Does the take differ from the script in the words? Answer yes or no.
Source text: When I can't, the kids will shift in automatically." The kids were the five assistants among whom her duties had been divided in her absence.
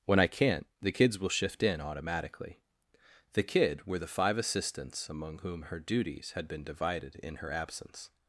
yes